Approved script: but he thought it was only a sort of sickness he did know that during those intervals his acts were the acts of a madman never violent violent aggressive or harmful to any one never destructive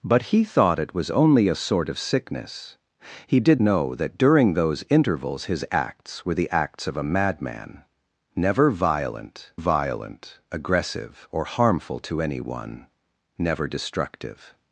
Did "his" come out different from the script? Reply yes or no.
no